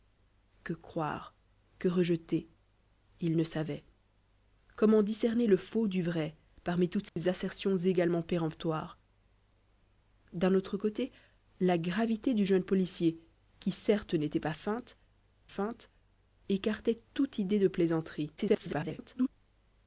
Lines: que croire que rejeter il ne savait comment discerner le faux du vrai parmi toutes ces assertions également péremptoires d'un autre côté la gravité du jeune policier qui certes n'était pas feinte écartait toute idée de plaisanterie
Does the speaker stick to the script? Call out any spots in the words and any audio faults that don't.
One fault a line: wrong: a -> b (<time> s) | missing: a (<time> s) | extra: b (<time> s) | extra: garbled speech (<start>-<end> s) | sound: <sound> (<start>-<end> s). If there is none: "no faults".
sound: dropout (7.1-7.2 s)
extra: feinte (15.5 s)
extra: garbled speech (18.4-19.3 s)